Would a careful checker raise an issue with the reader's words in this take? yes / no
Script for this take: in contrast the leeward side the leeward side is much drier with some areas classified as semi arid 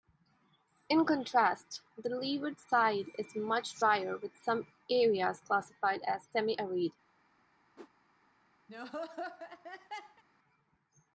yes